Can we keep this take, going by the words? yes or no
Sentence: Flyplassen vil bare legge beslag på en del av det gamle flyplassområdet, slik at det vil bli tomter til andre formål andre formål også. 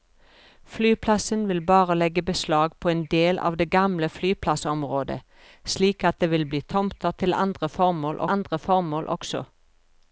yes